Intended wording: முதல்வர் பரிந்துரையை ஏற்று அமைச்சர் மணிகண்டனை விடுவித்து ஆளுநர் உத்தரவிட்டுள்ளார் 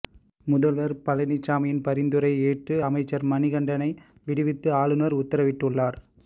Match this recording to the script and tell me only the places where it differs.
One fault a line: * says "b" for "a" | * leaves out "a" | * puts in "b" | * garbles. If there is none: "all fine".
* puts in "பழனிசாமியின்"